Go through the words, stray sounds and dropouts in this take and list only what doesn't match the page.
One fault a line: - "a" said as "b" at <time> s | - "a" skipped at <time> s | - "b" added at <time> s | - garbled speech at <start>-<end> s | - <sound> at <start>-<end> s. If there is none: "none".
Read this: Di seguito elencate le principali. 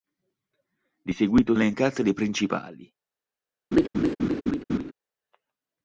- laugh at 3.7-4.9 s